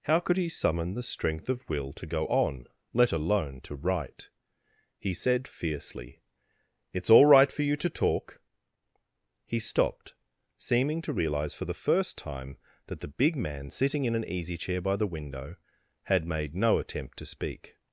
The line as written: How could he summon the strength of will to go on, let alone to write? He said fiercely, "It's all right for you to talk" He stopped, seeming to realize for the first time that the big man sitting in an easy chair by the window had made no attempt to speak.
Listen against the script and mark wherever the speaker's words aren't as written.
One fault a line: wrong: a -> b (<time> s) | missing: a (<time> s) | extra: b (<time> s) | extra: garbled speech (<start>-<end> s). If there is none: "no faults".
no faults